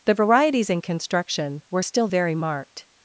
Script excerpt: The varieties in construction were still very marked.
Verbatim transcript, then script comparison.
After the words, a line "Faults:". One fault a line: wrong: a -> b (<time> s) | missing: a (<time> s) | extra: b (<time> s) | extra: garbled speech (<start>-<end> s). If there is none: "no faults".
The varieties in construction were still very marked.
Faults:
no faults